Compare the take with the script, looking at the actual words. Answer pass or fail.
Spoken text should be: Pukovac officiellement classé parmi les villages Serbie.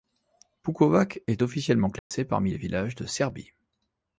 fail